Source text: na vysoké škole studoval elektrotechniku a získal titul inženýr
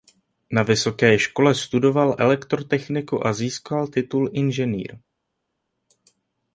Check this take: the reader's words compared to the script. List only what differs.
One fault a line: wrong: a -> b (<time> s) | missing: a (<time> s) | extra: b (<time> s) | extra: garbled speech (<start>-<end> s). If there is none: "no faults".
no faults